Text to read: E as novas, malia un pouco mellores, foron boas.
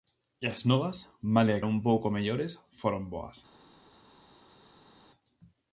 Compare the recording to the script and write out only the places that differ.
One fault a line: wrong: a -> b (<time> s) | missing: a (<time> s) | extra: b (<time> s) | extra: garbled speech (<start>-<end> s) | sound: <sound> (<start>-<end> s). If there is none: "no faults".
no faults